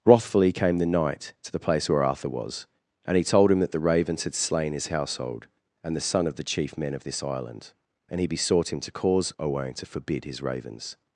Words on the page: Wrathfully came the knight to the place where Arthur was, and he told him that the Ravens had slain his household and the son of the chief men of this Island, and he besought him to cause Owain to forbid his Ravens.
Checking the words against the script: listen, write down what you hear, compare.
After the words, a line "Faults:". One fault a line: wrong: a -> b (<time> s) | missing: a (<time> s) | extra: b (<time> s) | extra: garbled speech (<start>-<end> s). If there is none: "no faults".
Wrathfully came the knight to the place where Arthur was, and he told him that the Ravens had slain his household and the son of the chief men of this Island, and he besought him to cause Owain to forbid his Ravens.
Faults:
no faults